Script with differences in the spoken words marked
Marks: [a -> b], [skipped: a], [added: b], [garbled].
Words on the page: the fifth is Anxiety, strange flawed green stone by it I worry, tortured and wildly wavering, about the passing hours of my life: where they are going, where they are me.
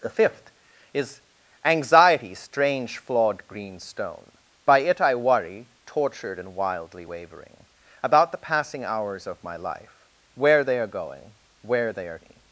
the fifth is Anxiety, strange flawed green stone by it I worry, tortured and wildly wavering, about the passing hours of my life: where they are going, where they are me.